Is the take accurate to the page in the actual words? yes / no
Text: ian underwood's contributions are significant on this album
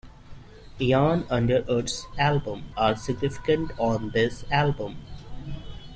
no